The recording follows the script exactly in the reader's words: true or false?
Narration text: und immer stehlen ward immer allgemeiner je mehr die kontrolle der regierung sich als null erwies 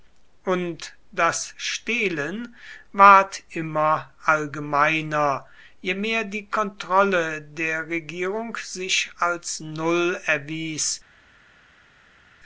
false